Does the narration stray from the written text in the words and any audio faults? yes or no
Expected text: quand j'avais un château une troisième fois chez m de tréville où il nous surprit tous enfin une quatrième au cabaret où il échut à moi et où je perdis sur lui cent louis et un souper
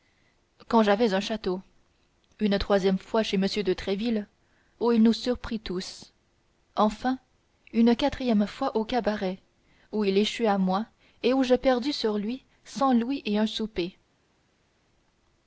yes